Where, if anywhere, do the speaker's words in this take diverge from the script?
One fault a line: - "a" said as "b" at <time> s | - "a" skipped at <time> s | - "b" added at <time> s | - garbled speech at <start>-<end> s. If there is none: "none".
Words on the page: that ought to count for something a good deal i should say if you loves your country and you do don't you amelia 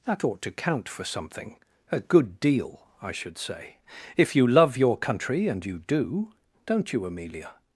- "loves" said as "love" at 4.5 s